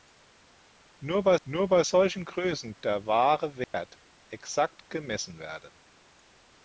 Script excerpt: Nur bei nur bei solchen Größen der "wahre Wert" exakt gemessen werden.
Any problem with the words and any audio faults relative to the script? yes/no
yes